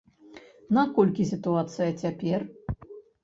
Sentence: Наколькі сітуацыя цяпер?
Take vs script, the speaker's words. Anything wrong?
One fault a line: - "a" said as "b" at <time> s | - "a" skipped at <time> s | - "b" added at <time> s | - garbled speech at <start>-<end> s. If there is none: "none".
none